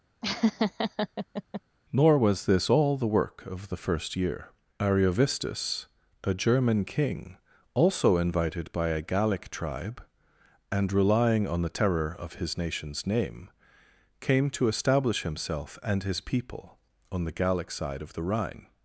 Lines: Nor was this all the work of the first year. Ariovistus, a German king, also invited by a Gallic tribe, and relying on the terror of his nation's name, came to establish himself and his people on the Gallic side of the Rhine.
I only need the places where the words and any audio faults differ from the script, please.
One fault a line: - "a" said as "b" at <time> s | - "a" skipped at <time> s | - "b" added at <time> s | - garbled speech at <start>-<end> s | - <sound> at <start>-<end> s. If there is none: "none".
- laugh at 0.2-1.6 s